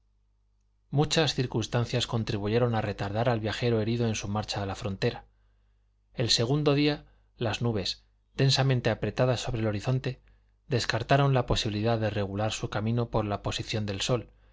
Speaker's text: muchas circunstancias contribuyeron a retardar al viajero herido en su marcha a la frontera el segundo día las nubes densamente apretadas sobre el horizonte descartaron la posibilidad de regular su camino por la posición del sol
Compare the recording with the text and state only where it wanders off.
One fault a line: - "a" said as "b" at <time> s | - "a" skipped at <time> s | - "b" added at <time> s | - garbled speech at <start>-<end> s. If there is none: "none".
none